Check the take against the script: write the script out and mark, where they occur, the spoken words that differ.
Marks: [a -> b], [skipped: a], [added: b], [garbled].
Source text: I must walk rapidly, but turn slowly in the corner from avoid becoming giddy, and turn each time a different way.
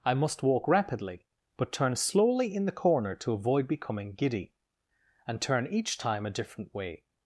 I must walk rapidly, but turn slowly in the corner [from -> to] avoid becoming giddy, and turn each time a different way.